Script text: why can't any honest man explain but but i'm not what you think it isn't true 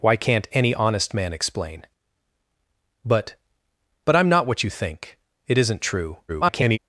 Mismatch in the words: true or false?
true